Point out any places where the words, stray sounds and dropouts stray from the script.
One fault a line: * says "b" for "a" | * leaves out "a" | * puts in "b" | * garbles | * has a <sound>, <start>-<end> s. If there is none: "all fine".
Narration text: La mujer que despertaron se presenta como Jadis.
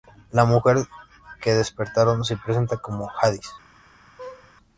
* has a laugh, 4.2-4.5 s